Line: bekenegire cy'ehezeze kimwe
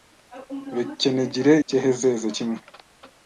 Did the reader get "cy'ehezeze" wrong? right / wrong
right